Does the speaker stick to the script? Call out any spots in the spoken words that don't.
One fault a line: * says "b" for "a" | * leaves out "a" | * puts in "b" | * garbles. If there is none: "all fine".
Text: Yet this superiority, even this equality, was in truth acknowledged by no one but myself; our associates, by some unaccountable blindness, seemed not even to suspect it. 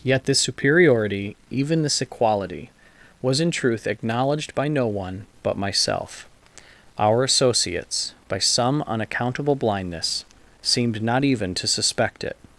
all fine